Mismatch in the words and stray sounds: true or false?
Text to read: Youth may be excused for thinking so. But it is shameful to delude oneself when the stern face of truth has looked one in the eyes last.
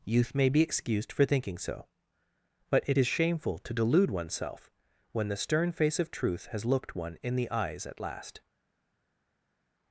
true